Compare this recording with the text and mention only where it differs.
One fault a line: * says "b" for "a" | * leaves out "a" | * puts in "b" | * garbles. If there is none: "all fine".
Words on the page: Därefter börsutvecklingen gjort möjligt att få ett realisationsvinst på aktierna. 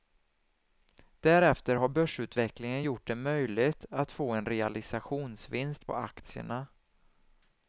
* puts in "har"
* puts in "det"
* says "en" for "ett"